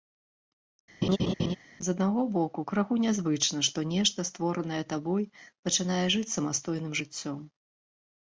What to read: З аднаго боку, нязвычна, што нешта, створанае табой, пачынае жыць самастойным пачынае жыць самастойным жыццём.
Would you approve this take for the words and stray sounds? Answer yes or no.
no